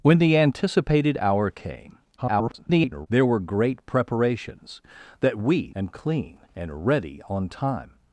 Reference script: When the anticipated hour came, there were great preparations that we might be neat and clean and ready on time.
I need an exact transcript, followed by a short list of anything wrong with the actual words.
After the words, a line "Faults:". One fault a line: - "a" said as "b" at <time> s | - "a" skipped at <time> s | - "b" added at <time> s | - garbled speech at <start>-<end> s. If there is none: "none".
When the anticipated hour came, [garbled] there were great preparations that we and clean and ready on time.
Faults:
- garbled speech at 2.2-3.1 s
- "might be neat" skipped at 5.7 s